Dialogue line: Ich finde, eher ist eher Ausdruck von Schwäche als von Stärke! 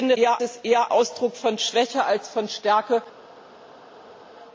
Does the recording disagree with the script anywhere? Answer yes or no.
no